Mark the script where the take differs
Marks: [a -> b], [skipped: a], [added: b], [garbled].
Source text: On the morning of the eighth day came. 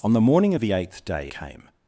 On the morning of the eighth day came.